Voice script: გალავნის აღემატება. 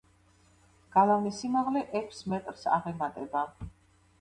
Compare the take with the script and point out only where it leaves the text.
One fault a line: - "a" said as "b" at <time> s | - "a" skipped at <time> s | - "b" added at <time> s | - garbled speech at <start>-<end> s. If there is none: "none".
- "სიმაღლე ექვს მეტრს" added at 1.4 s